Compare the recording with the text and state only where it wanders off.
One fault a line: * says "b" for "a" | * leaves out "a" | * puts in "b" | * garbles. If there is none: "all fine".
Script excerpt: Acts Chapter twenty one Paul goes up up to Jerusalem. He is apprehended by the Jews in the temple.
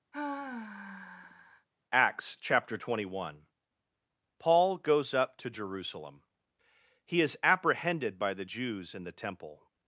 * leaves out "up"